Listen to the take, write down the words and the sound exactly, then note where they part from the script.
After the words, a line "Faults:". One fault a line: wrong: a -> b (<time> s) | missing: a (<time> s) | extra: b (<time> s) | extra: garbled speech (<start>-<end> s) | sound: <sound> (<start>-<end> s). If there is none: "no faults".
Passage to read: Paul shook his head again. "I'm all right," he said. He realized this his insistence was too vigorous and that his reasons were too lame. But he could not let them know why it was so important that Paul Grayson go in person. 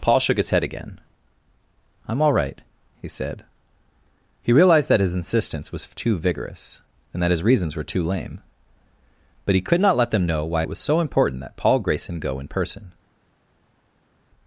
Paul shook his head again. "I'm all right," he said. He realized that his insistence was too vigorous and that his reasons were too lame. But he could not let them know why it was so important that Paul Grayson go in person.
Faults:
wrong: this -> that (4.9 s)